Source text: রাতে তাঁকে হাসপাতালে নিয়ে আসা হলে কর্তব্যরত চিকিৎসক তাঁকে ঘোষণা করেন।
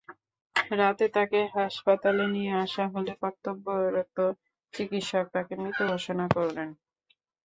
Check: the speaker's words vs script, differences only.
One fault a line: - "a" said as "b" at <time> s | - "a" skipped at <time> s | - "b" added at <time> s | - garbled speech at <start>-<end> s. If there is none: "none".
- "মৃত" added at 5.6 s